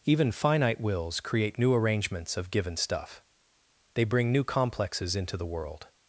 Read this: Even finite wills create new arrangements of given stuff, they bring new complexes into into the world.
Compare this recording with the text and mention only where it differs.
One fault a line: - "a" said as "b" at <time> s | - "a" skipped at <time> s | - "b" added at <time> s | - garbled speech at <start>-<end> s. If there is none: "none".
- "into" skipped at 5.4 s